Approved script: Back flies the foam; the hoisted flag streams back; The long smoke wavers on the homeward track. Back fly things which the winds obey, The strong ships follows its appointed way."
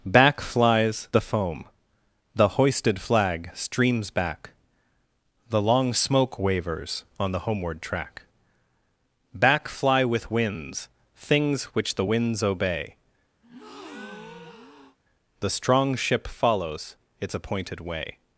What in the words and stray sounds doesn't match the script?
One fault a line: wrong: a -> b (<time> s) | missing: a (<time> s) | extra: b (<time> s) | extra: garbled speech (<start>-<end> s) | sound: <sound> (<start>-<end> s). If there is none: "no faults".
extra: with winds (10.1 s)
sound: breath (13.4-15.0 s)
wrong: ships -> ship (15.9 s)